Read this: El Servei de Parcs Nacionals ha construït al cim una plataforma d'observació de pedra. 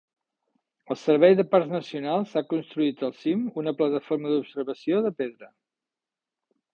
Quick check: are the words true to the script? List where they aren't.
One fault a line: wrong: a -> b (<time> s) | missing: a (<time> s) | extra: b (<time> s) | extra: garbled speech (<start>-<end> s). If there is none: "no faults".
no faults